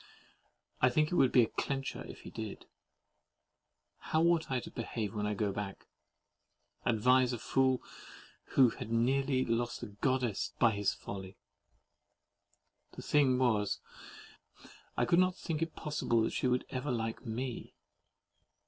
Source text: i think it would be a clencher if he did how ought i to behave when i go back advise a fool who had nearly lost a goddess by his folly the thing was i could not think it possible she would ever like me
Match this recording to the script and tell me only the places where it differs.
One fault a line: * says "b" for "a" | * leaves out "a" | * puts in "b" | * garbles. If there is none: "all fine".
all fine